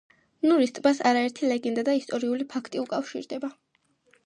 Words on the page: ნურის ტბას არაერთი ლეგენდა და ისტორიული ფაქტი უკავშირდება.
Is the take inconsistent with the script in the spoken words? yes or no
no